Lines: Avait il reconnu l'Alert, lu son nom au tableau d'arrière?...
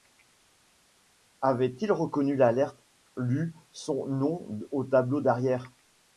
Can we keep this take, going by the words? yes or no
yes